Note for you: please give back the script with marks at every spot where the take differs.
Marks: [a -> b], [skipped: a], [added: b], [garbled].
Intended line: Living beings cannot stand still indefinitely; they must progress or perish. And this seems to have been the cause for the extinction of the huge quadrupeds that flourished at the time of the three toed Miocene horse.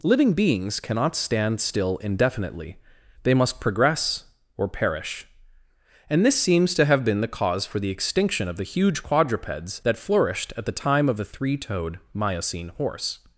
Living beings cannot stand still indefinitely; they must progress or perish. And this seems to have been the cause for the extinction of the huge quadrupeds that flourished at the time of the three toed Miocene horse.